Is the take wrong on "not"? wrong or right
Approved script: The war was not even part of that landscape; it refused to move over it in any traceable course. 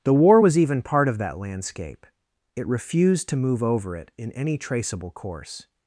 wrong